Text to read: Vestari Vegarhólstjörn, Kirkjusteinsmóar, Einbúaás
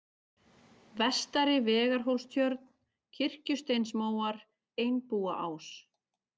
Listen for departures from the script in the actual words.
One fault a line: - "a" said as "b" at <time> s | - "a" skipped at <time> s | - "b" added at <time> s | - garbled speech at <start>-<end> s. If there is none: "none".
none